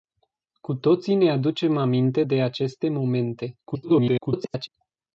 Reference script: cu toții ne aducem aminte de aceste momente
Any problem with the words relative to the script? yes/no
yes